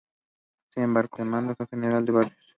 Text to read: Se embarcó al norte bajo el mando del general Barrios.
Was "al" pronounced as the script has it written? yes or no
no